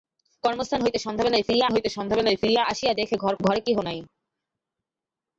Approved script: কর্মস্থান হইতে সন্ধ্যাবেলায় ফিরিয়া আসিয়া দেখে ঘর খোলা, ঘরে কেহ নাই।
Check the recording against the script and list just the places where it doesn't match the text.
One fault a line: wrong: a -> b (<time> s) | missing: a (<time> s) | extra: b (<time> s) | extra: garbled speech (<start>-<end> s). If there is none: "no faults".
extra: হইতে সন্ধ্যাবেলায় ফিরিয়া (1.7 s)
missing: খোলা (3.3 s)